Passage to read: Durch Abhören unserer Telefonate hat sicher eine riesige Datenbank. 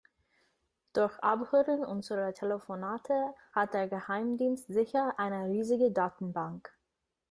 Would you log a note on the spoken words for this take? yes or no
yes